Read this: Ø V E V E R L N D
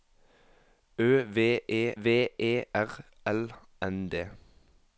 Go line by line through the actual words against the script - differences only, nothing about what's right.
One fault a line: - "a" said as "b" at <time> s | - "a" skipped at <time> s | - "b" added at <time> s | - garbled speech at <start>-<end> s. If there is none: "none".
none